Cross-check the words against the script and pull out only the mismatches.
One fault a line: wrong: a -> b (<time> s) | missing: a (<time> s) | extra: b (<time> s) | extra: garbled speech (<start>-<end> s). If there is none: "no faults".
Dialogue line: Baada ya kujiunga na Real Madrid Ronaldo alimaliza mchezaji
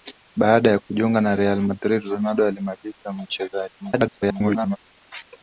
extra: garbled speech (3.8-4.8 s)